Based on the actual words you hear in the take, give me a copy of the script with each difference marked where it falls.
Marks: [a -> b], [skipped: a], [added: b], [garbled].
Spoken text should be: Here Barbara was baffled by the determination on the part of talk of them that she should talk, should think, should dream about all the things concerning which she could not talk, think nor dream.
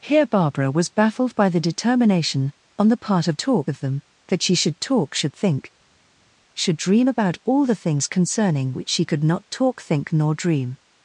Here Barbara was baffled by the determination on the part of talk of them that she should talk, should think, should dream about all the things concerning which she could not talk, think nor dream.